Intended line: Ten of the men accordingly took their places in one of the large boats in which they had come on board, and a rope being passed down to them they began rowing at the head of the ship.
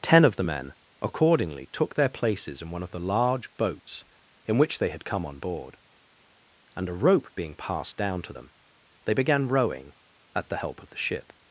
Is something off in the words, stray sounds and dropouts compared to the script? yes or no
yes